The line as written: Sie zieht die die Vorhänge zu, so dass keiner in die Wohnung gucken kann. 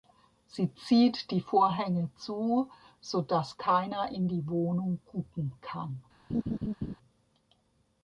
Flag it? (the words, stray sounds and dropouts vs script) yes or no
yes